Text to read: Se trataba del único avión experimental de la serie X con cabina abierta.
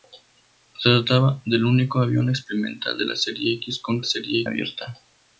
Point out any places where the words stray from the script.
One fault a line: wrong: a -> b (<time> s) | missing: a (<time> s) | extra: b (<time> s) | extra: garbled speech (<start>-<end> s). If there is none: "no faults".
wrong: cabina -> serie (4.1 s)